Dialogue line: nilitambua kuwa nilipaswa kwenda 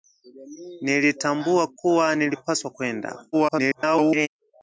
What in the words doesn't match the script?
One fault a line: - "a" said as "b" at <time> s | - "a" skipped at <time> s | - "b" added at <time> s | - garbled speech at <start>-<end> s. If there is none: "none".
- garbled speech at 3.3-4.3 s